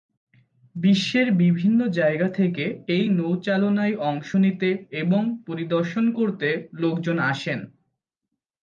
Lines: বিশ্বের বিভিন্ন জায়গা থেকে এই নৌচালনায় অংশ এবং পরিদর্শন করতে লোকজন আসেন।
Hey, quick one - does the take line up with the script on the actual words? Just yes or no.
no